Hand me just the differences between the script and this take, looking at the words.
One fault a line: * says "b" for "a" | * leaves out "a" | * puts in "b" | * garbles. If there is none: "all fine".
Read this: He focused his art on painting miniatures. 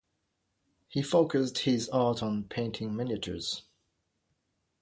all fine